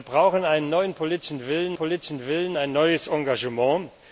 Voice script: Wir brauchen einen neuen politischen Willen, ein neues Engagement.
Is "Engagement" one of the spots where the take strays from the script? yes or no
no